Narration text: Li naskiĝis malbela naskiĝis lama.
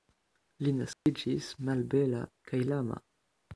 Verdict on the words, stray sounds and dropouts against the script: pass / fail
fail